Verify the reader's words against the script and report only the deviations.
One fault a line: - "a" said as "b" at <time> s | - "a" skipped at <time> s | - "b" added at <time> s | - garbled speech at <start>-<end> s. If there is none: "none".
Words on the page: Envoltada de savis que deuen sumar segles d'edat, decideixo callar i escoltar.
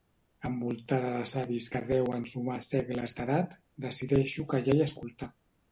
none